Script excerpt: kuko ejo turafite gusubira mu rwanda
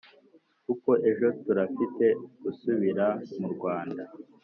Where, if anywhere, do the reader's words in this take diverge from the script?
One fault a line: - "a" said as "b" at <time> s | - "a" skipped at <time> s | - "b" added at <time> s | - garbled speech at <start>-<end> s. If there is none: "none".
none